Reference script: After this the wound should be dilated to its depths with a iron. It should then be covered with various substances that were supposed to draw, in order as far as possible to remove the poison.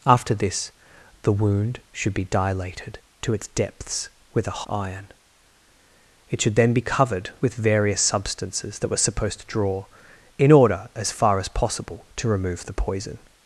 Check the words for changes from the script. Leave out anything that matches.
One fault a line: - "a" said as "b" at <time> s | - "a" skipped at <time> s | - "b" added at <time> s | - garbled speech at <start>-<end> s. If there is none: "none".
none